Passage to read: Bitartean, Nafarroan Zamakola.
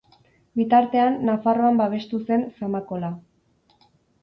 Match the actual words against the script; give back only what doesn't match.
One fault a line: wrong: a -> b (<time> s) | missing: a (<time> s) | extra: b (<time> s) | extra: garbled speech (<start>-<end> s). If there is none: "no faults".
extra: babestu zen (1.8 s)